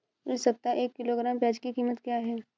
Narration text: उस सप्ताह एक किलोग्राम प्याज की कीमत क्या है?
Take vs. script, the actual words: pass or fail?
fail